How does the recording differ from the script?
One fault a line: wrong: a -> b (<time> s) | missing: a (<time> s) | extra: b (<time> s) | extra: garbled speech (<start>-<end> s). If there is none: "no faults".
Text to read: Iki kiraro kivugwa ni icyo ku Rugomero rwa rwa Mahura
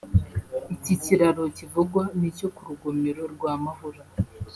missing: rwa (3.5 s)